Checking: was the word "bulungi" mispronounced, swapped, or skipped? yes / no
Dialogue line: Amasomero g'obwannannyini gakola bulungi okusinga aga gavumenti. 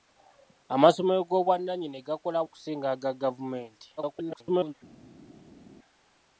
yes